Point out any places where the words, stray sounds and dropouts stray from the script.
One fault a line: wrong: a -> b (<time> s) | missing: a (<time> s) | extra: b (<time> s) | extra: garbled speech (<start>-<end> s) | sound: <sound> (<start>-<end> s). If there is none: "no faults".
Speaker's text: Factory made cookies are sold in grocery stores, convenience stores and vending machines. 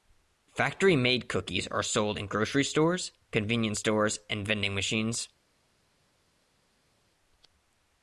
no faults